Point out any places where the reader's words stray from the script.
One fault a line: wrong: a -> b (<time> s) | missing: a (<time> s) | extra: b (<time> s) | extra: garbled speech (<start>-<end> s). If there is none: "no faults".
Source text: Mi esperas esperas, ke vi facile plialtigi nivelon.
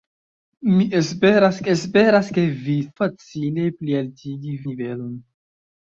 no faults